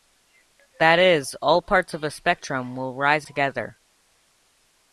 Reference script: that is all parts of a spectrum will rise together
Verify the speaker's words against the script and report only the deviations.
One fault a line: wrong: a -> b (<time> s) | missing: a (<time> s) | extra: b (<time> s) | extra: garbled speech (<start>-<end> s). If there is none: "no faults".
no faults